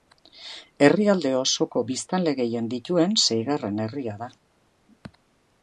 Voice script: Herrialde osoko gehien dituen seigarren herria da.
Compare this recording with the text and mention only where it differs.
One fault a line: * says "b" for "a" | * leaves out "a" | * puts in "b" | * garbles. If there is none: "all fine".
* puts in "biztanle"